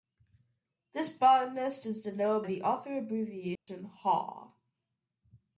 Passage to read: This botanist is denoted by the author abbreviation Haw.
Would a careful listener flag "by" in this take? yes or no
yes